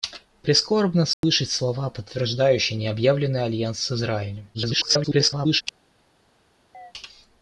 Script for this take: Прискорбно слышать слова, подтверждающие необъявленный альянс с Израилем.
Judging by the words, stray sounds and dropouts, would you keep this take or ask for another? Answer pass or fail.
fail